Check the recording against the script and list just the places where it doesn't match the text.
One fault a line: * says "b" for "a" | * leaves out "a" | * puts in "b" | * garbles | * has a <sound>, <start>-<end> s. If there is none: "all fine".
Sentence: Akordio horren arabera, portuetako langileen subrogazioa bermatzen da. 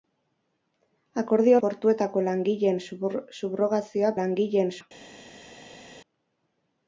* leaves out "horren arabera"
* says "langileen" for "bermatzen"